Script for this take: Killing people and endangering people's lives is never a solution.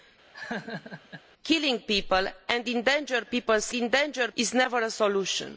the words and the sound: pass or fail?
fail